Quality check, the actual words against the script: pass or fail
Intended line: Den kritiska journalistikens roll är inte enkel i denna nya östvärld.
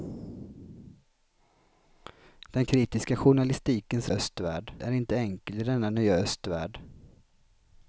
fail